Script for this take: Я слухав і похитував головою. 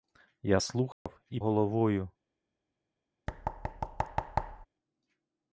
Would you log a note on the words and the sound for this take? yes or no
yes